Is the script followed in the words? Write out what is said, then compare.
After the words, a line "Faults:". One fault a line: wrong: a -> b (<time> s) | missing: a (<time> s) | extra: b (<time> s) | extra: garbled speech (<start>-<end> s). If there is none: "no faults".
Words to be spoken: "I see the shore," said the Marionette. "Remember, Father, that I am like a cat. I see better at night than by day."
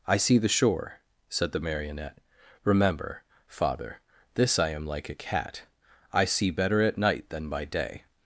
"I see the shore," said the Marionette. "Remember, Father, this I am like a cat. I see better at night than by day."
Faults:
wrong: that -> this (4.3 s)